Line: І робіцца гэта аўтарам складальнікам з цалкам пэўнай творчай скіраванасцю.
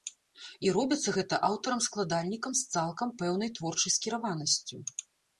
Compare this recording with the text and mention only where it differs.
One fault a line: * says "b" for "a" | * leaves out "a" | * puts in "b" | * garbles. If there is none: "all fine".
all fine